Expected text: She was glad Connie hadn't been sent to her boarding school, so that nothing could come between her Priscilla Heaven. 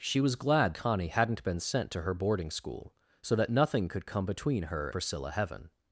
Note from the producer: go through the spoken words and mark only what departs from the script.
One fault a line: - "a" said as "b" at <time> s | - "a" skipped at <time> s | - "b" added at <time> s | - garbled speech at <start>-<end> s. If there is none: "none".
none